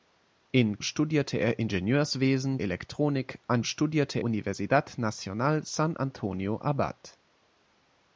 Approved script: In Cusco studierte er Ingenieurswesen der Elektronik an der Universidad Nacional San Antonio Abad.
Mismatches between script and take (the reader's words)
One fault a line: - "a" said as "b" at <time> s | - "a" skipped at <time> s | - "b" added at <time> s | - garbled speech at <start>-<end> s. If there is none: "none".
- "Cusco" skipped at 0.8 s
- "der" skipped at 2.6 s
- "der" said as "studierte" at 3.6 s